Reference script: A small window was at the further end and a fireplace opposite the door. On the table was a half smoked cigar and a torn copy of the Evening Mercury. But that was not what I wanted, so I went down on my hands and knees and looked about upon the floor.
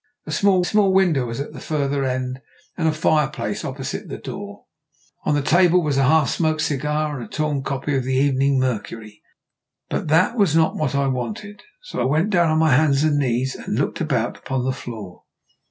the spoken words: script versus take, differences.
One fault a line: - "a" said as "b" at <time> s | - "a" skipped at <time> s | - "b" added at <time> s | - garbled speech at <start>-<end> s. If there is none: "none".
- "small" added at 0.6 s